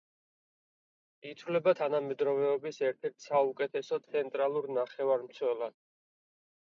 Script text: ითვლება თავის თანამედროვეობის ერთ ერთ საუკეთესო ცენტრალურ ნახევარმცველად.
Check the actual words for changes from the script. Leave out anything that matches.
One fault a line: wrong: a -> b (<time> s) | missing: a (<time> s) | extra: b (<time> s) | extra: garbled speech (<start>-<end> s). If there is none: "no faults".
missing: თავის (1.7 s)